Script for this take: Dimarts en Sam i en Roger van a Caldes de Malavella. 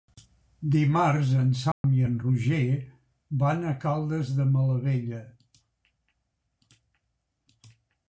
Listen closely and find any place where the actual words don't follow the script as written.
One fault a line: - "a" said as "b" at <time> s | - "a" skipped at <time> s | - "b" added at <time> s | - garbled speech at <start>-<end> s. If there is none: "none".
none